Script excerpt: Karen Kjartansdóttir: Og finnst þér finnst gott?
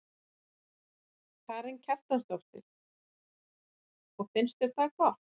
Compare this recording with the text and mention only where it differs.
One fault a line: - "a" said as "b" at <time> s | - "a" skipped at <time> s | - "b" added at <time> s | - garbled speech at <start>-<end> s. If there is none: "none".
- "finnst" said as "það" at 4.8 s